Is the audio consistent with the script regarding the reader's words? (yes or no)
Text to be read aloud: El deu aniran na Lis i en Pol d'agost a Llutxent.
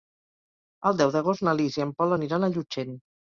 no